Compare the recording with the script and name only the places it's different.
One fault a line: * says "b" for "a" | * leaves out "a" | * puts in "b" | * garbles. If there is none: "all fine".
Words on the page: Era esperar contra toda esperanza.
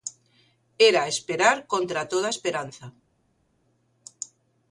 all fine